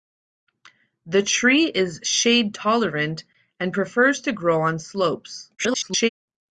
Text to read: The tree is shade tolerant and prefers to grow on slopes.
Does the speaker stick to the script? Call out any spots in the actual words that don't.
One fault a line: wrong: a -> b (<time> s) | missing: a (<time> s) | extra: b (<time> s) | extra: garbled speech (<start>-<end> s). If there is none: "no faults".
extra: garbled speech (5.6-6.1 s)